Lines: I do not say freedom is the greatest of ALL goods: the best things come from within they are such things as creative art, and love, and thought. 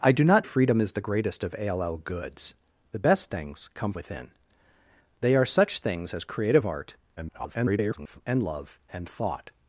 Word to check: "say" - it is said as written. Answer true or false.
false